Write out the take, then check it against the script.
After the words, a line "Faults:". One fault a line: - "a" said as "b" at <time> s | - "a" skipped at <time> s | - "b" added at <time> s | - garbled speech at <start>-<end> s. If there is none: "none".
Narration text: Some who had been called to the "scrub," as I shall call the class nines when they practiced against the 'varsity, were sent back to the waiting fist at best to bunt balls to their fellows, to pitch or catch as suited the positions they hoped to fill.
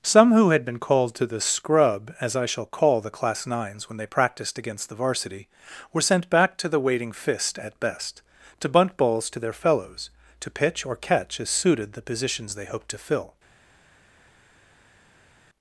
Some who had been called to the "scrub," as I shall call the class nines when they practiced against the 'varsity, were sent back to the waiting fist at best to bunt balls to their fellows, to pitch or catch as suited the positions they hoped to fill.
Faults:
none